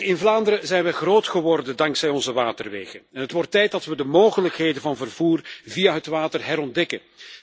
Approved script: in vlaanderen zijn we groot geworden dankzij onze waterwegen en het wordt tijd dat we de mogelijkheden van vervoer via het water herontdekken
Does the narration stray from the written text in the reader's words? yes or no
no